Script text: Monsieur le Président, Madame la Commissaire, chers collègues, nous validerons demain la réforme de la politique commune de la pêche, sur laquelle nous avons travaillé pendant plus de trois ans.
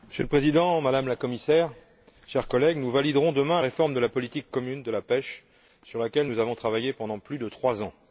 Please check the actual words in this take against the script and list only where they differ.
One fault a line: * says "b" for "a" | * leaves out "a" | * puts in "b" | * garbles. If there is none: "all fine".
* leaves out "la"